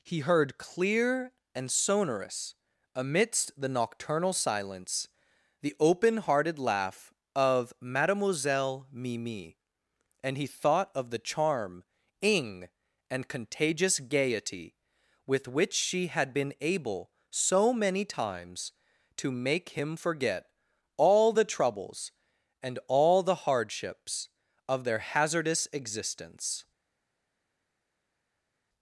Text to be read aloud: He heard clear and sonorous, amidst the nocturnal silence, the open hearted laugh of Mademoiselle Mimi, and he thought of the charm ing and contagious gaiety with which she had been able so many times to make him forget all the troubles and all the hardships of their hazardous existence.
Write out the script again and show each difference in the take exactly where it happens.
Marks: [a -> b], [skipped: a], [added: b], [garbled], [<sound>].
He heard clear and sonorous, amidst the nocturnal silence, the open hearted laugh of Mademoiselle Mimi, and he thought of the charm ing and contagious gaiety with which she had been able so many times to make him forget all the troubles and all the hardships of their hazardous existence.